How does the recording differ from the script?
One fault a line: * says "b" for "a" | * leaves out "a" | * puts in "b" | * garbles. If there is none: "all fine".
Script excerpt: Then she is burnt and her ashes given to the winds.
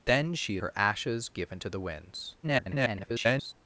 * leaves out "is burnt and"
* garbles